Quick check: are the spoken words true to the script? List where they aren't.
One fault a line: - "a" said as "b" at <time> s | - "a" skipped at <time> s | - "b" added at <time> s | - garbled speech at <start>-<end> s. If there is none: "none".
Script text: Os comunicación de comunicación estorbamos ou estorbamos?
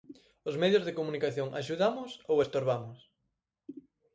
- "comunicación" said as "medios" at 0.6 s
- "estorbamos" said as "axudamos" at 1.6 s